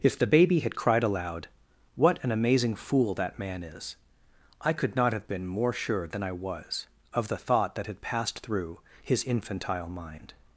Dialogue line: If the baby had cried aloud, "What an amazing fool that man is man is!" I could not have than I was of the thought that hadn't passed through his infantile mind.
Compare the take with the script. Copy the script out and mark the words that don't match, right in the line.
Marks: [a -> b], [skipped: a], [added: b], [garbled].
If the baby had cried aloud, "What an amazing fool that man is [skipped: man is!"] I could not have [added: been more sure] than I was of the thought that [hadn't -> had] passed through his infantile mind.